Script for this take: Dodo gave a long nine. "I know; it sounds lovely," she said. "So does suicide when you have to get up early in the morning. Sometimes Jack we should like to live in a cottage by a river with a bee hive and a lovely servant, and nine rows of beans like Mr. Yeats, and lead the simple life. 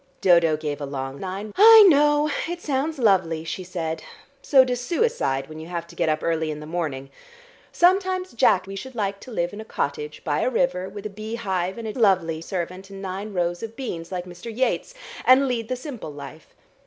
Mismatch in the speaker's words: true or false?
false